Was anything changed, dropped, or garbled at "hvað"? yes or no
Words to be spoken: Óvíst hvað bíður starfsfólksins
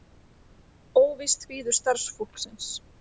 yes